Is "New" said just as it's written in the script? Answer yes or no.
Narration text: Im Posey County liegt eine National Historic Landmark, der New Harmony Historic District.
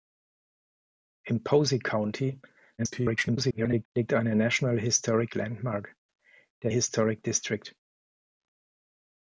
no